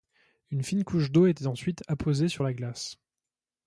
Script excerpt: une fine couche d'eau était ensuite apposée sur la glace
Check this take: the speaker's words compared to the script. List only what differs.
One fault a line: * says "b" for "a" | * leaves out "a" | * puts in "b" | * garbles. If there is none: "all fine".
all fine